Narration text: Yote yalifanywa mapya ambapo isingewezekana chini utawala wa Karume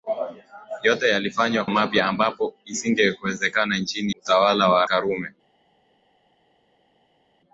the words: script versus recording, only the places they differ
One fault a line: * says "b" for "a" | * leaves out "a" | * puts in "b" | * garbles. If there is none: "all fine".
all fine